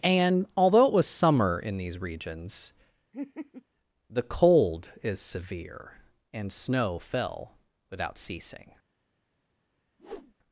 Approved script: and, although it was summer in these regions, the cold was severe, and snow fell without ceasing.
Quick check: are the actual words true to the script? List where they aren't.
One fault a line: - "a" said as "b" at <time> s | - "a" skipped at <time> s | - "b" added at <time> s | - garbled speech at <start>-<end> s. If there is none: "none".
- "was" said as "is" at 5.0 s